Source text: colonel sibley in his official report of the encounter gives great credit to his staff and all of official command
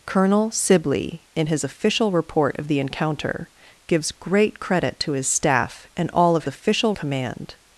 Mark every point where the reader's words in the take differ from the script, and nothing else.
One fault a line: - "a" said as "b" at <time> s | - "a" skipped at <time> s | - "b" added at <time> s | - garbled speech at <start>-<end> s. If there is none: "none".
none